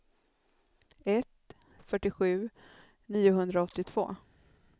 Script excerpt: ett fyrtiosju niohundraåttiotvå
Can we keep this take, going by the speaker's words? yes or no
yes